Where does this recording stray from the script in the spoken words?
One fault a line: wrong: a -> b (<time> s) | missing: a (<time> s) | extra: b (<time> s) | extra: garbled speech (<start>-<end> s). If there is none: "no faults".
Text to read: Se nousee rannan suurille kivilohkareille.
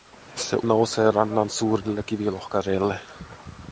no faults